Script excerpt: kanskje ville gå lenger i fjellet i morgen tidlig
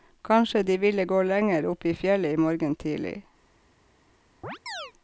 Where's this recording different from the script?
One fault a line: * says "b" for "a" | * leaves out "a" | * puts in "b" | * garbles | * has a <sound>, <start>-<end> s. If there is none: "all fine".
* puts in "de"
* puts in "opp"
* has a chirp, 4.4-4.9 s